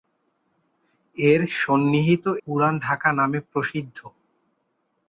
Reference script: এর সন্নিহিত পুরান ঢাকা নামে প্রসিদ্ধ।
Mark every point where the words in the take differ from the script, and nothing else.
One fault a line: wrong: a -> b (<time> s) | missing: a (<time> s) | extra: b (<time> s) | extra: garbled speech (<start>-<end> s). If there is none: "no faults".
no faults